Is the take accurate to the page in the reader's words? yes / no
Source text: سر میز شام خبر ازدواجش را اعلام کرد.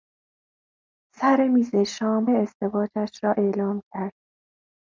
no